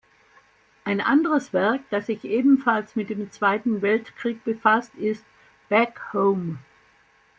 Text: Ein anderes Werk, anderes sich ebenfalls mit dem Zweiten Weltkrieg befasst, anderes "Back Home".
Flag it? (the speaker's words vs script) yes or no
yes